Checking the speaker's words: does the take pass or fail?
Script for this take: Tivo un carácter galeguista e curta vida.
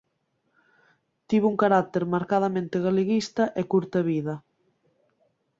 fail